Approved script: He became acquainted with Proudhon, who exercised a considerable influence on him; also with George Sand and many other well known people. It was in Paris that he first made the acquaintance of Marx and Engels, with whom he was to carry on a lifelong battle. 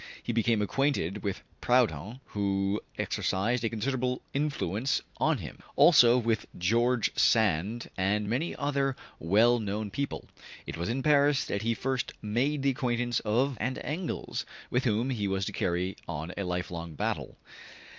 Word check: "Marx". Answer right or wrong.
wrong